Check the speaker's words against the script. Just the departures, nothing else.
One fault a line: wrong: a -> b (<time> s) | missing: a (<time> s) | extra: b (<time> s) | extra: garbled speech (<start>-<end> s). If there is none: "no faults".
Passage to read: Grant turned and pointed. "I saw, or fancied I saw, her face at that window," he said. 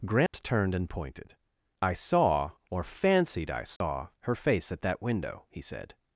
no faults